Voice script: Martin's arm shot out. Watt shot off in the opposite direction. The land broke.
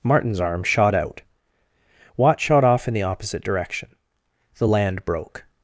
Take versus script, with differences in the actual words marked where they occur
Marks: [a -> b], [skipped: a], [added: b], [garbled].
Martin's arm shot out. Watt shot off in the opposite direction. The land broke.